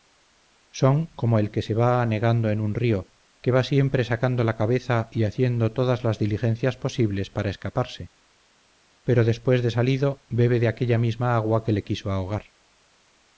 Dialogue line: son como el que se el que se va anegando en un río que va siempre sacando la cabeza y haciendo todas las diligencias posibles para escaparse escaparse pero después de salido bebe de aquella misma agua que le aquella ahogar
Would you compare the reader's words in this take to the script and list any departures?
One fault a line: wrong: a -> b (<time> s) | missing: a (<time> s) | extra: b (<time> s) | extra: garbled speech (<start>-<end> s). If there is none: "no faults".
missing: el que se (1.8 s)
missing: escaparse (8.1 s)
wrong: aquella -> quiso (11.8 s)